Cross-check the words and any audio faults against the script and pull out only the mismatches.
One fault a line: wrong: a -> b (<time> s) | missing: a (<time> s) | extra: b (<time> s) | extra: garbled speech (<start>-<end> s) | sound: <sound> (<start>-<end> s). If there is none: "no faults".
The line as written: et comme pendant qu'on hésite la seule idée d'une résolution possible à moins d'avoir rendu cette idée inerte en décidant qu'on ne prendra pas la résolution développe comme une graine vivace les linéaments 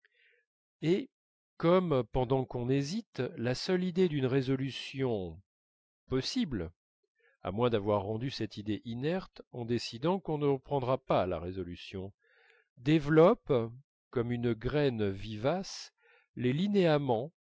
no faults